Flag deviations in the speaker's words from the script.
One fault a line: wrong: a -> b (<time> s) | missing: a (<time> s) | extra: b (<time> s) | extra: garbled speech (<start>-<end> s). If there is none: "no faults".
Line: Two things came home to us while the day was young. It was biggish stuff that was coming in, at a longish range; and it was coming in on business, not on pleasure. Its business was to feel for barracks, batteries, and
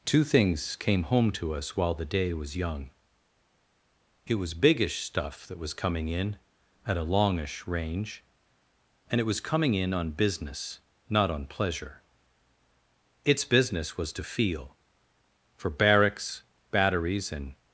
no faults